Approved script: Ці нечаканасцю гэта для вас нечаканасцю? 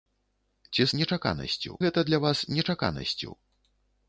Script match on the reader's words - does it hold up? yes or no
yes